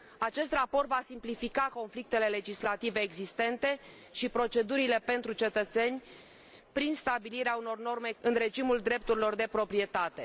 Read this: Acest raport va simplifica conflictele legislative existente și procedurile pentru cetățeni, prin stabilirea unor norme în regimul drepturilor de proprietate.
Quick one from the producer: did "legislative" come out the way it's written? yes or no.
yes